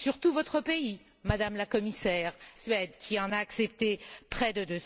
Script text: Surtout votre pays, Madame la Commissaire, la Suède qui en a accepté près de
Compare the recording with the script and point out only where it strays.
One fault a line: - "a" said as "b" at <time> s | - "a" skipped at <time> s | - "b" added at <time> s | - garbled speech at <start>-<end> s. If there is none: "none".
- "la" skipped at 2.3 s